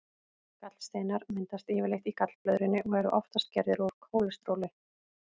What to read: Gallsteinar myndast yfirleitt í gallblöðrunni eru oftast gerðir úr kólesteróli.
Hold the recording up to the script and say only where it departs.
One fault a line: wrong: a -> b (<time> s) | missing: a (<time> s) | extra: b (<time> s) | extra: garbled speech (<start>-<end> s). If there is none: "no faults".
extra: og (2.9 s)